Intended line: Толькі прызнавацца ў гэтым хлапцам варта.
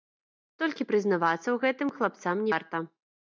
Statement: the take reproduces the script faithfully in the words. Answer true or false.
true